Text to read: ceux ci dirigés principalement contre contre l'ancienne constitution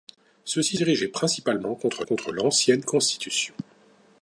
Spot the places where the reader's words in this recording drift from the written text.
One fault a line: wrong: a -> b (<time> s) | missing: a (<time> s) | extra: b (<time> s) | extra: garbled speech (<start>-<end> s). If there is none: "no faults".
no faults